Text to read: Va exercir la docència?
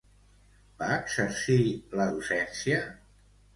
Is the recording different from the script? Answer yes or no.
no